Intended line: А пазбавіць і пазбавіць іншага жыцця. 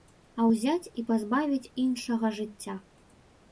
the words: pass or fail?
fail